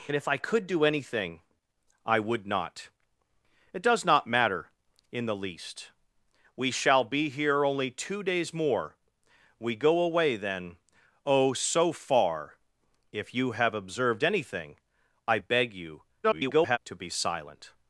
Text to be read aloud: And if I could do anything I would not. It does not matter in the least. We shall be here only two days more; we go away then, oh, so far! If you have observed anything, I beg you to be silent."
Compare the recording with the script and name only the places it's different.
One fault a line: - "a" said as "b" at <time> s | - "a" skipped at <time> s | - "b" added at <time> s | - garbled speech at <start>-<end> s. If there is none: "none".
- garbled speech at 16.2-16.8 s